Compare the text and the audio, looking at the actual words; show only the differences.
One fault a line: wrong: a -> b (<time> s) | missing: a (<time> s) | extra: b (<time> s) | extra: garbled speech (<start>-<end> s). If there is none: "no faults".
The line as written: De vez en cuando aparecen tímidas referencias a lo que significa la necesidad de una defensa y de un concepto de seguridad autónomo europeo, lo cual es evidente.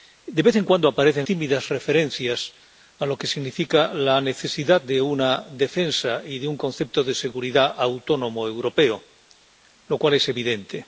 no faults